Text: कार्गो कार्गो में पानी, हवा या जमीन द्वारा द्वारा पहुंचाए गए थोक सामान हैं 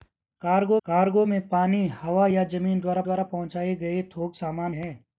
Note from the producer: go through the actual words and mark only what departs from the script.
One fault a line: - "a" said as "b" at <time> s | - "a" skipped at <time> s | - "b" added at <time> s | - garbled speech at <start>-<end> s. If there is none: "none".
none